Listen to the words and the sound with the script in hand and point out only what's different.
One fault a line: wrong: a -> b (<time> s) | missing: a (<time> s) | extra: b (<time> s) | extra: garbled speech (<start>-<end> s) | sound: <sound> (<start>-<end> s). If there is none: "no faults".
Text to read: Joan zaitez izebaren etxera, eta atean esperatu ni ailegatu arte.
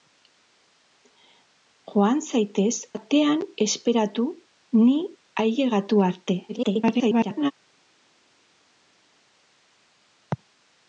missing: izebaren etxera eta (2.7 s)
extra: garbled speech (6.5-7.5 s)